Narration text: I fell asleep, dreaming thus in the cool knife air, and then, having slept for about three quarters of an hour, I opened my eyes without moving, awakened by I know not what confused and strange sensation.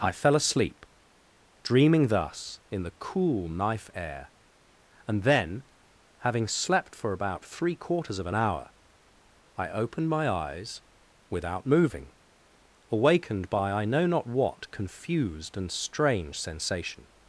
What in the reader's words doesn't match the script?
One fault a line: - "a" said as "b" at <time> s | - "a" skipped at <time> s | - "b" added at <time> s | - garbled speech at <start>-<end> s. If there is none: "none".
none